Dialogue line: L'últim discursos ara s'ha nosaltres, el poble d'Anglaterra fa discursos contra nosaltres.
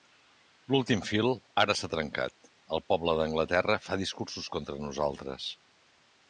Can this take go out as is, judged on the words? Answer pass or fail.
fail